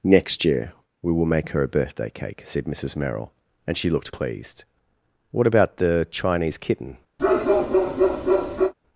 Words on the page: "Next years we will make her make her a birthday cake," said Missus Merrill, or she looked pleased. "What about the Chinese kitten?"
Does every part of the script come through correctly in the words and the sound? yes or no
no